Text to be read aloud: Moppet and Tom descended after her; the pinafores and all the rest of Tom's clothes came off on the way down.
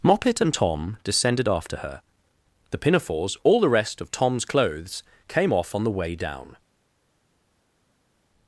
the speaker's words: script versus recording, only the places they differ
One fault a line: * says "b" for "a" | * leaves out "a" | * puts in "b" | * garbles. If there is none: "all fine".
* leaves out "and"